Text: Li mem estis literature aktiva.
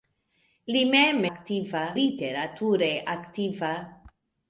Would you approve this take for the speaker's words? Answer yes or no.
no